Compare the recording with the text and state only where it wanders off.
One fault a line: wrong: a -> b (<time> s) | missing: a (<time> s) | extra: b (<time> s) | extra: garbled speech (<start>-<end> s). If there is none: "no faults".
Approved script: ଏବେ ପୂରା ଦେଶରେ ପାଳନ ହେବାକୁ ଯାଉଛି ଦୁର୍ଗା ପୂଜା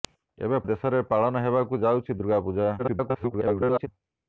missing: ପୂରା (0.6 s)
extra: garbled speech (2.8-3.9 s)